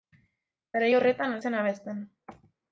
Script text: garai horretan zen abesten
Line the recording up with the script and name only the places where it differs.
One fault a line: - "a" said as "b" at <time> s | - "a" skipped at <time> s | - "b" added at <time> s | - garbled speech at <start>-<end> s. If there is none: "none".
none